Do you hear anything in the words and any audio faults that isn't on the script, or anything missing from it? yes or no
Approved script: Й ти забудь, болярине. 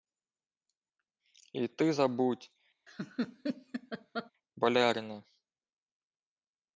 yes